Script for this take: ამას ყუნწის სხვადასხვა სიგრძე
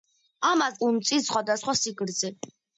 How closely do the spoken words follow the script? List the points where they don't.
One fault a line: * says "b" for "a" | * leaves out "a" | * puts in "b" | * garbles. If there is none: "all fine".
all fine